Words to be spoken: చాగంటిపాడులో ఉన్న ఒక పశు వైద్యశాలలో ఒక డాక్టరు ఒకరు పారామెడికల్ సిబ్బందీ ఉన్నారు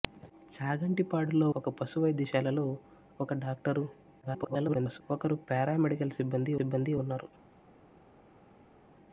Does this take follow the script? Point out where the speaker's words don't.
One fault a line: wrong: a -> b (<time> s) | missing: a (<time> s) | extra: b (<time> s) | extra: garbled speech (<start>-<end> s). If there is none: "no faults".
missing: ఉన్న (1.5 s)
extra: garbled speech (4.2-5.0 s)
extra: సిబ్బందీ (6.6 s)